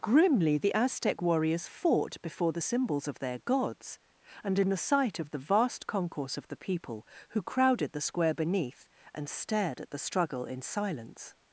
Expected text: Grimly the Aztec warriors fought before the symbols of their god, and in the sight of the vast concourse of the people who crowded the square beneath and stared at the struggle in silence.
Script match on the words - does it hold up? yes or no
no